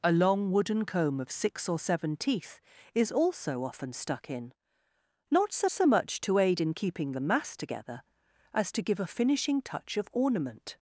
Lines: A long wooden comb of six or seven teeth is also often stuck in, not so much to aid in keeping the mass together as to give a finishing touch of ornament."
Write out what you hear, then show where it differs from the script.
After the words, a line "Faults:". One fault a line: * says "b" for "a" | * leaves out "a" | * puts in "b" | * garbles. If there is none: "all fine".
A long wooden comb of six or seven teeth is also often stuck in, not so so much to aid in keeping the mass together as to give a finishing touch of ornament."
Faults:
* puts in "so"